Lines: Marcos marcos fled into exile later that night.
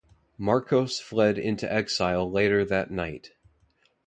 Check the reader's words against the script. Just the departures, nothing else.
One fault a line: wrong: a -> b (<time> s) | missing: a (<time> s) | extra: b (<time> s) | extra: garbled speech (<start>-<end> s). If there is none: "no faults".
missing: marcos (1.0 s)